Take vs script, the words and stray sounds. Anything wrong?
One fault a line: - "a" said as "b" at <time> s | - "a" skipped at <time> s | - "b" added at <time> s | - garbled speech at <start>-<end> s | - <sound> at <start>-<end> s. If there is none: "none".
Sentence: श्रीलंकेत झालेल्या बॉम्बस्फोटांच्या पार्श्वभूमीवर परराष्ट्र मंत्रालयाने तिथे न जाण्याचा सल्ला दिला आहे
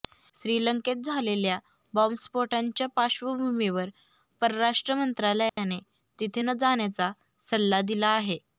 - dropout at 5.5-5.6 s